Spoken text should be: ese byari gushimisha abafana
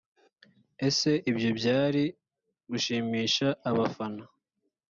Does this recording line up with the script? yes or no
no